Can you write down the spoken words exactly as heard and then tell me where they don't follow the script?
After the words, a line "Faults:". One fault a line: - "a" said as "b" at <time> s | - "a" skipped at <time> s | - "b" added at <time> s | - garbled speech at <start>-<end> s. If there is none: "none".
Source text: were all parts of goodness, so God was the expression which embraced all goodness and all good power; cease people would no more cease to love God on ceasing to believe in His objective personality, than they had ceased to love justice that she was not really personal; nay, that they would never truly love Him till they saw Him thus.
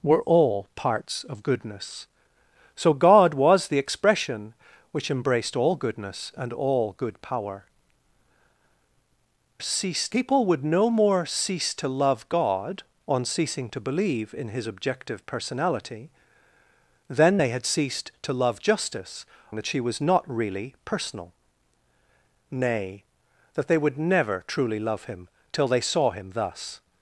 were all parts of goodness, so God was the expression which embraced all goodness and all good power; cease people would no more cease to love God on ceasing to believe in His objective personality, than they had ceased to love justice that she was not really personal; nay, that they would never truly love Him till they saw Him thus.
Faults:
none